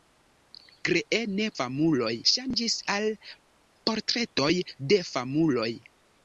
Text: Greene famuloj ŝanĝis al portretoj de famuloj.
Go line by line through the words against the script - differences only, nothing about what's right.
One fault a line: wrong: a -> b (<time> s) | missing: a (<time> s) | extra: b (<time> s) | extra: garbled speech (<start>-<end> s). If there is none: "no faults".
no faults